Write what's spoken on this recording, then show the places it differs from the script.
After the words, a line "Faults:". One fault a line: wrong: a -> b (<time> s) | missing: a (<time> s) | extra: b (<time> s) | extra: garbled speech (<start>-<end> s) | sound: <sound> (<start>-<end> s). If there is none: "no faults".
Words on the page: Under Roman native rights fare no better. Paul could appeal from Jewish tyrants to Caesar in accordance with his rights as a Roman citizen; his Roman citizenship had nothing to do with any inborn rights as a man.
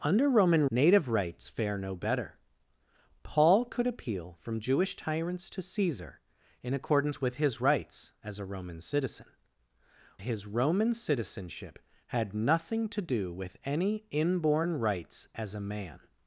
Under Roman native rights fare no better. Paul could appeal from Jewish tyrants to Caesar in accordance with his rights as a Roman citizen; his Roman citizenship had nothing to do with any inborn rights as a man.
Faults:
no faults